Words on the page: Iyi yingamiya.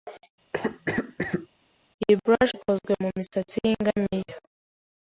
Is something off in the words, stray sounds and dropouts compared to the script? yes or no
yes